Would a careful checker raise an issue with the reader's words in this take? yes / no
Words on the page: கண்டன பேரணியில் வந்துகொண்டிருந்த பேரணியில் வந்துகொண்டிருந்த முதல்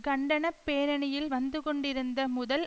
yes